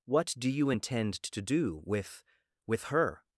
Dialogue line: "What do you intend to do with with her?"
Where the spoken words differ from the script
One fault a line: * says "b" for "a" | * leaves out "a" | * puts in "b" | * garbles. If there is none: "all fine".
all fine